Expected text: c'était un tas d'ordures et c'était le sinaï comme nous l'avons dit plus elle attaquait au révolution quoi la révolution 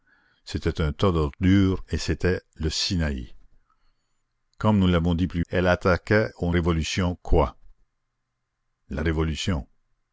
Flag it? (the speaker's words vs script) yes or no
no